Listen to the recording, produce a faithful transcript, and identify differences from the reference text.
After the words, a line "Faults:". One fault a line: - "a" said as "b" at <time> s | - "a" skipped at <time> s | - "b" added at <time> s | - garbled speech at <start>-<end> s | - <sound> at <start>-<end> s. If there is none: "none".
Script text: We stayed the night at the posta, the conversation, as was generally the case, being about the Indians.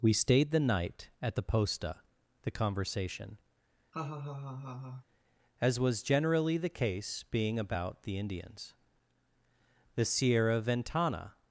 We stayed the night at the posta, the conversation, as was generally the case, being about the Indians. The Sierra Ventana
Faults:
- laugh at 3.9-5.0 s
- "The Sierra Ventana" added at 9.9 s